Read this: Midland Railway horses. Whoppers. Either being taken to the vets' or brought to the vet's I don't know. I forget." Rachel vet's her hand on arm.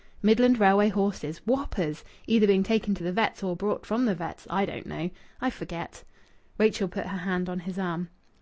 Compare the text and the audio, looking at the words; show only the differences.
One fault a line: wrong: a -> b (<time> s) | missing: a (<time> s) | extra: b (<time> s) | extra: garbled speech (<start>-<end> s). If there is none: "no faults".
wrong: to -> from (3.8 s)
wrong: vet's -> put (6.9 s)
extra: his (7.6 s)